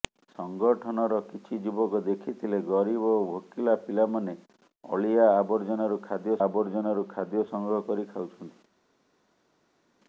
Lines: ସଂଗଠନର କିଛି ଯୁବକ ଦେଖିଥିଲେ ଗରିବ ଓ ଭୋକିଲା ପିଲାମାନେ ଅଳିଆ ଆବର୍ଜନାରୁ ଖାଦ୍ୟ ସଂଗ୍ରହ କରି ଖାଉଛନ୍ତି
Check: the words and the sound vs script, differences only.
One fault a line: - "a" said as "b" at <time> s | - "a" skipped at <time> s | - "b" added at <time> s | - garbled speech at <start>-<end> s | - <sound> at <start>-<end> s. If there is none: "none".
- "ଆବର୍ଜନାରୁ ଖାଦ୍ୟ" added at 6.4 s